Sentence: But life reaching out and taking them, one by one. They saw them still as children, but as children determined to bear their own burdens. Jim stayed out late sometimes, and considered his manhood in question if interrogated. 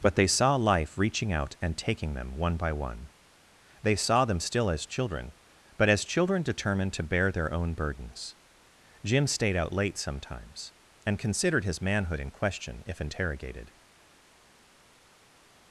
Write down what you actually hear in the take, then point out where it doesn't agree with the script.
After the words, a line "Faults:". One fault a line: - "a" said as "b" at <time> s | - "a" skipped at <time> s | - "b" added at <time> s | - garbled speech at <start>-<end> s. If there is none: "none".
But they saw life reaching out and taking them, one by one. They saw them still as children, but as children determined to bear their own burdens. Jim stayed out late sometimes, and considered his manhood in question if interrogated.
Faults:
- "they saw" added at 0.1 s